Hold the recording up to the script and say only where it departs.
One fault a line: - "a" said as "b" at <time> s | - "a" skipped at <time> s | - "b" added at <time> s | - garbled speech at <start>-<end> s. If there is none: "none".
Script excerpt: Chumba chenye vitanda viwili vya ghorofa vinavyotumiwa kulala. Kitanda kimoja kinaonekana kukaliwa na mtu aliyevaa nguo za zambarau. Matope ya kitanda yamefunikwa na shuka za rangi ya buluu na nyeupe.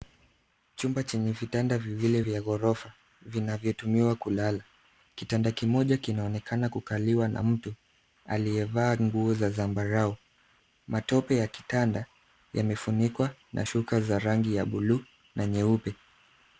none